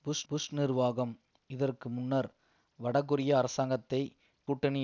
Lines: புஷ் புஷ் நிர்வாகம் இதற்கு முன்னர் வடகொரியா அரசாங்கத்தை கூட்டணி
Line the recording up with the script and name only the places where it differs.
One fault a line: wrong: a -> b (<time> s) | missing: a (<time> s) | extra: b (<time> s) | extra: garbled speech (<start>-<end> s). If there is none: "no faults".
no faults